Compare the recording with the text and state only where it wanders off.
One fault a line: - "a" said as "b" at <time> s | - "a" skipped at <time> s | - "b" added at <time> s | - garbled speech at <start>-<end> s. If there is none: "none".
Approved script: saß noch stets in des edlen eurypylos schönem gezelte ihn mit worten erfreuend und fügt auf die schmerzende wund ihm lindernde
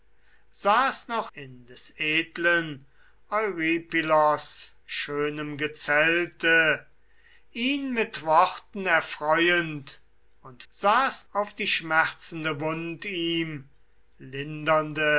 - "stets" skipped at 1.3 s
- "fügt" said as "saß" at 10.7 s